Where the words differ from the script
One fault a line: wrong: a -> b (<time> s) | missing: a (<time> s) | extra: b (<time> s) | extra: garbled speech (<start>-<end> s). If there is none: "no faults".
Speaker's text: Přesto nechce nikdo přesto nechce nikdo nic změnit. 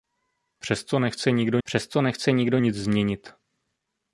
no faults